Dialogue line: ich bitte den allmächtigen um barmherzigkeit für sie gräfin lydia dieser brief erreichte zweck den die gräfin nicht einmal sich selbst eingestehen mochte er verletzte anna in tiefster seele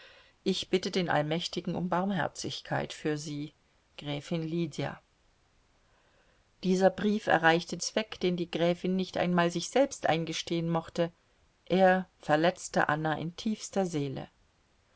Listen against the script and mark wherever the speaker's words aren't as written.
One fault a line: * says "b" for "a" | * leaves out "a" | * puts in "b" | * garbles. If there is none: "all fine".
all fine